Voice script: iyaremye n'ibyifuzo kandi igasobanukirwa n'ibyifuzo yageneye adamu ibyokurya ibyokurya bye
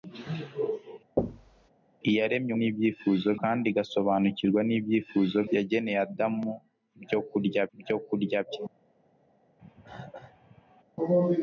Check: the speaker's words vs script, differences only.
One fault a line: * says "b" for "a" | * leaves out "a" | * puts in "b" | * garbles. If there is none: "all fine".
all fine